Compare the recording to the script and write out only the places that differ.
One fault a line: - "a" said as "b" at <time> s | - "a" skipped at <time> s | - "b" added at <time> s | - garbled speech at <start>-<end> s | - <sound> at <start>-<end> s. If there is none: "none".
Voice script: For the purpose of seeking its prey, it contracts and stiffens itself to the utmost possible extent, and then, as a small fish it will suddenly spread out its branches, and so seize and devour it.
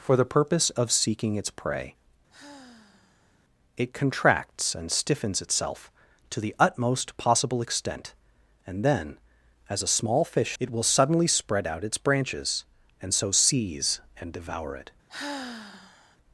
- sigh at 2.3-3.4 s
- sigh at 15.1-16.2 s